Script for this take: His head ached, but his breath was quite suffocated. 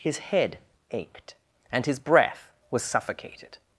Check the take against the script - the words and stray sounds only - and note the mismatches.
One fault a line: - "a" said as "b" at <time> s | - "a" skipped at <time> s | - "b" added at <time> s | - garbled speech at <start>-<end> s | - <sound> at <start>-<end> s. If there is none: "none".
- "but" said as "and" at 1.7 s
- "quite" skipped at 2.8 s